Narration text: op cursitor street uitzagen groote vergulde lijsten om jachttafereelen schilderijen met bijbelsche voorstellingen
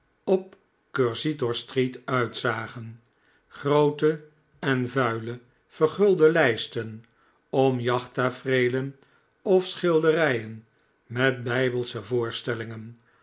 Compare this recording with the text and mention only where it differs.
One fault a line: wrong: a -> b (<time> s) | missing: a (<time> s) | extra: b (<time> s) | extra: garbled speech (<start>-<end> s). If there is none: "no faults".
extra: en vuile (4.6 s)
extra: of (9.4 s)